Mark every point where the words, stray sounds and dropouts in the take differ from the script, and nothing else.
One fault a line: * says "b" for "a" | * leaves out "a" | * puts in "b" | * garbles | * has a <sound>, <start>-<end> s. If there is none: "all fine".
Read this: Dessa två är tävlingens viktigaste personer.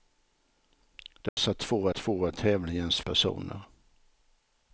* has a dropout, 1.3-1.4 s
* puts in "två"
* leaves out "viktigaste"